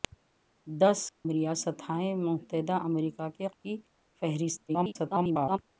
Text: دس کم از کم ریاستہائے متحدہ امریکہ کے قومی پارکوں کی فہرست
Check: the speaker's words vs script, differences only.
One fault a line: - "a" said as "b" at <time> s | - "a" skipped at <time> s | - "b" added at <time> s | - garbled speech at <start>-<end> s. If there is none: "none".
- "کم از کم" skipped at 1.0 s
- "قومی پارکوں" skipped at 3.5 s
- garbled speech at 4.7-5.6 s